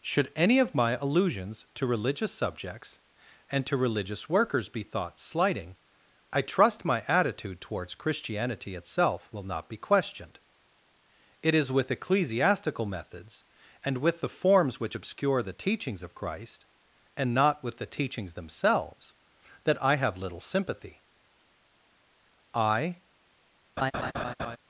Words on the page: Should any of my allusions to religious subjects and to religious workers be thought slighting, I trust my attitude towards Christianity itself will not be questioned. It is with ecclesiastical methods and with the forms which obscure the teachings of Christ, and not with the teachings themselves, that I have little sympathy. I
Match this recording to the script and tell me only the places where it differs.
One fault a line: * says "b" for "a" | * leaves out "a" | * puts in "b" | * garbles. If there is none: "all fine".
all fine